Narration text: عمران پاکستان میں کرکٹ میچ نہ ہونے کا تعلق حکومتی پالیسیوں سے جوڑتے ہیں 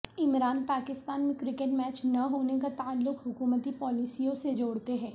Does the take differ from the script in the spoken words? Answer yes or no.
no